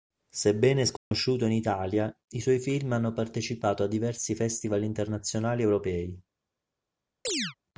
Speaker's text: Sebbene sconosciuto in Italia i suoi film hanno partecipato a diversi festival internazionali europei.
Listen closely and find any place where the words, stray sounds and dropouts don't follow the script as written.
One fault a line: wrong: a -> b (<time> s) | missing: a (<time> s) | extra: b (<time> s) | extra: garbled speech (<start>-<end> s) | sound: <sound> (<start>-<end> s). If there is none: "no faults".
sound: dropout (1.0-1.1 s)
sound: chirp (7.2-7.5 s)